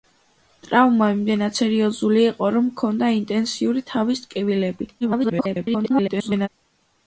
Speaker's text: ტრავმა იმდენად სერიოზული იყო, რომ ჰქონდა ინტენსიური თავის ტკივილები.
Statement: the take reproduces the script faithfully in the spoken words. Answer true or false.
false